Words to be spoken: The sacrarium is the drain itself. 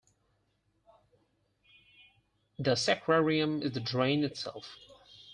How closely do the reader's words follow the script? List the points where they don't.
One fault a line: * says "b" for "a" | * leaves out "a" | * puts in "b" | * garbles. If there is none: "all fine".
all fine